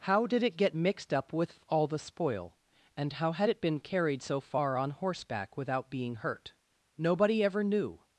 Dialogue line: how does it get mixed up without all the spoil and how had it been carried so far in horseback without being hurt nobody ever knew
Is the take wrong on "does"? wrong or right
wrong